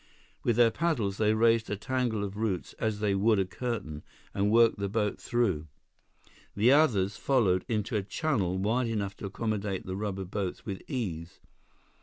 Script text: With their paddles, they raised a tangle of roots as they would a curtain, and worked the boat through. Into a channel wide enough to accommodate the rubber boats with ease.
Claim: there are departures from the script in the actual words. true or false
true